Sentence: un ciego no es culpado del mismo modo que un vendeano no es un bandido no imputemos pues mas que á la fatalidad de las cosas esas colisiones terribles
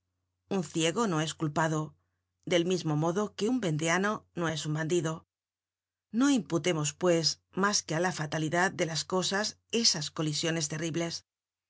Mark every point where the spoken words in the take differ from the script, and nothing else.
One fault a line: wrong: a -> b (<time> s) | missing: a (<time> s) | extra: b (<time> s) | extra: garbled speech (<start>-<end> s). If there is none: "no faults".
no faults